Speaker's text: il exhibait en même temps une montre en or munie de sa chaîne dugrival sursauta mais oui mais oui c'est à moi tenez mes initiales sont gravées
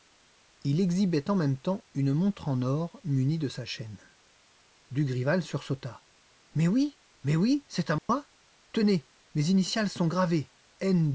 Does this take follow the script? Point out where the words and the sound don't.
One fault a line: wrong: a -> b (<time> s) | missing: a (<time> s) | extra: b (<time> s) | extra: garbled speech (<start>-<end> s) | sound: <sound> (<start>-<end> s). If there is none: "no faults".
sound: dropout (8.0-8.1 s)